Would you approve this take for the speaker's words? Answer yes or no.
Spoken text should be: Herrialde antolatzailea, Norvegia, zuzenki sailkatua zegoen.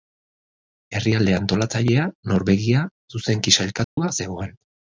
yes